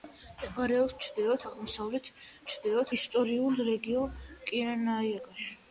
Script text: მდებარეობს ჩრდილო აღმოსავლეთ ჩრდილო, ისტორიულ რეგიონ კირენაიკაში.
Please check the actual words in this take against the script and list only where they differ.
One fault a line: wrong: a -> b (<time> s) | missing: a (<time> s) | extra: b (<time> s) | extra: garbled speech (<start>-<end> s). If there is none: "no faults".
no faults